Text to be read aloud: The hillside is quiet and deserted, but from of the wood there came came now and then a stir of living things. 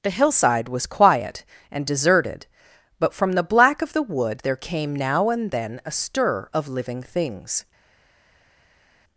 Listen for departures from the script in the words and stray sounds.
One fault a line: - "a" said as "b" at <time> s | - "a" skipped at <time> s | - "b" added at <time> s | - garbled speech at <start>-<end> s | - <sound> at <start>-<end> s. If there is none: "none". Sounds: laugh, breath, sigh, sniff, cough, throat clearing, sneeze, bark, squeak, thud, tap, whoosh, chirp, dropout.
- "is" said as "was" at 0.7 s
- "the black" added at 3.3 s
- "came" skipped at 4.9 s